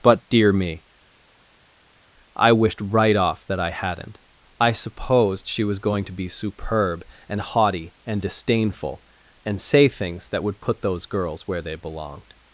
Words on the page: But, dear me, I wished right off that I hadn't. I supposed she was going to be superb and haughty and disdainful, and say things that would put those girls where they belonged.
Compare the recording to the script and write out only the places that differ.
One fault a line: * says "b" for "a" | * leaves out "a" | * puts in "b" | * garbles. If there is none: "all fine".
all fine